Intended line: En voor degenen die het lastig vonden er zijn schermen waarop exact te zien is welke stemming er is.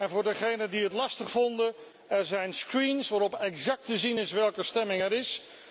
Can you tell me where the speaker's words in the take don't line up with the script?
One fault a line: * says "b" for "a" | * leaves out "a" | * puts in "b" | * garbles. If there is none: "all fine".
all fine